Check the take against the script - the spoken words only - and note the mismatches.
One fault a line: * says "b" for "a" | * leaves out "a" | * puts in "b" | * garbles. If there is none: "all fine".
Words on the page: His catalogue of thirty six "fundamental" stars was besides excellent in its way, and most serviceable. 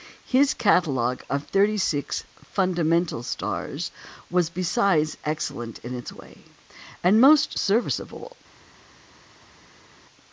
all fine